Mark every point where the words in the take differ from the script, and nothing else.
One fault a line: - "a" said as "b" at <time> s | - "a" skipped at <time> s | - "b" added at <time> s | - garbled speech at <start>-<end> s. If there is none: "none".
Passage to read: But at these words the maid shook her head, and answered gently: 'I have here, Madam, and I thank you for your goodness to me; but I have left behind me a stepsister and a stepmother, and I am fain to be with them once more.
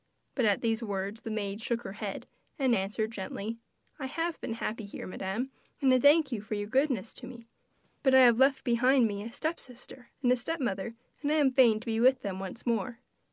- "been happy" added at 4.4 s